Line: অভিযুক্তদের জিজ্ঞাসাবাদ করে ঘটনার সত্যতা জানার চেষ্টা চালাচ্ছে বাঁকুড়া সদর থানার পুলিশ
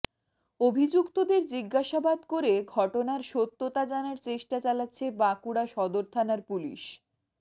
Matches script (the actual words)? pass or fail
pass